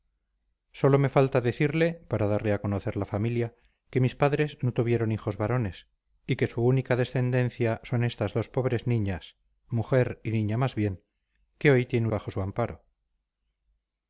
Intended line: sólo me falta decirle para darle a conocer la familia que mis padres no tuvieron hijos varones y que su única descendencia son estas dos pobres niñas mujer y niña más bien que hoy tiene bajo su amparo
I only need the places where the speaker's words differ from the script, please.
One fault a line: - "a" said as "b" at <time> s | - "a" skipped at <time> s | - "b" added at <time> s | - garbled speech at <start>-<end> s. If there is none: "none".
none